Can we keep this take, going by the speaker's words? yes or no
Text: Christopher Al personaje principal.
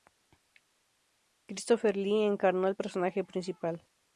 no